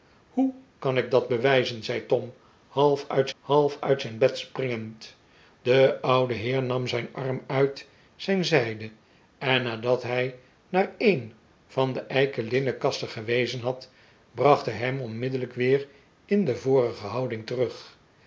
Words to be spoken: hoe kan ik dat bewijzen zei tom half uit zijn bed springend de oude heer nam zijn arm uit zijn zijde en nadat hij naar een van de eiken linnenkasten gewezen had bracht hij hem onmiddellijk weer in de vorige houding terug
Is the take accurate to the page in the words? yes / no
no